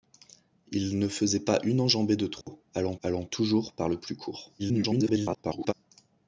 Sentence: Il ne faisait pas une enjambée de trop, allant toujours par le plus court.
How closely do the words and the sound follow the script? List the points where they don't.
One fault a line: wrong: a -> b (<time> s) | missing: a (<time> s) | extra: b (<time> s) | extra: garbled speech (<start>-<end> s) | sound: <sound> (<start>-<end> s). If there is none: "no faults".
sound: dropout (2.4-2.5 s)
extra: allant (3.0 s)
extra: garbled speech (4.6-5.7 s)